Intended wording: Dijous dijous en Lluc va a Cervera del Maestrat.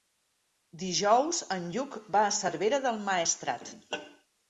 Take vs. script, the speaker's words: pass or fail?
fail